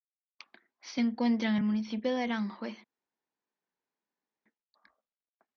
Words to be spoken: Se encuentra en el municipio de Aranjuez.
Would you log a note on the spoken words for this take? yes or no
no